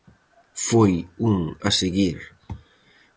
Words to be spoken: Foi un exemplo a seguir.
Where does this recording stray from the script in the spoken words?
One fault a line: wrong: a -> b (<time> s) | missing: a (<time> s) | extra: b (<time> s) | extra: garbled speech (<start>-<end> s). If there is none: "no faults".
missing: exemplo (1.4 s)